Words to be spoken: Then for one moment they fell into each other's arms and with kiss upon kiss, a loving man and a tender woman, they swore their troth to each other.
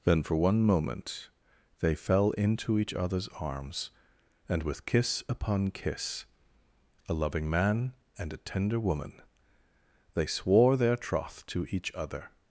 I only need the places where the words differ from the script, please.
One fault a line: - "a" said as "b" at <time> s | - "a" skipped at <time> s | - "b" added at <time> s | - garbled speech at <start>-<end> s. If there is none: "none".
none